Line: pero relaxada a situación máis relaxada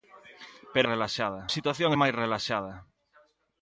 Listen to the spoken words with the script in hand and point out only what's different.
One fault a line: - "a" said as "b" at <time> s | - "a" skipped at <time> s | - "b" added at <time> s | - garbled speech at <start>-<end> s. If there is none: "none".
none